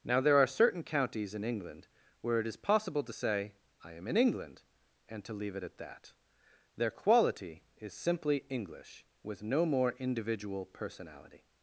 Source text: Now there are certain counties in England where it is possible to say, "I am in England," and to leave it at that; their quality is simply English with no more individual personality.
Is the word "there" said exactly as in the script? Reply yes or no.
yes